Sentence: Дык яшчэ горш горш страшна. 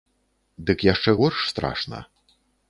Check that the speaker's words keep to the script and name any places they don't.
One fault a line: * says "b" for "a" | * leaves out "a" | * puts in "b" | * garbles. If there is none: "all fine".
* leaves out "горш"